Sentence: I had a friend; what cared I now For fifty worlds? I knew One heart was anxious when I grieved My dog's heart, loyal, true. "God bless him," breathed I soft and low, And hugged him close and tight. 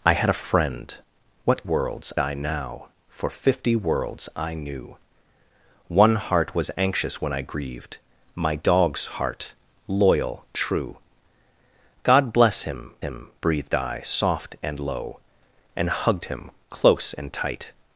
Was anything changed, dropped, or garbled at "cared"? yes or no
yes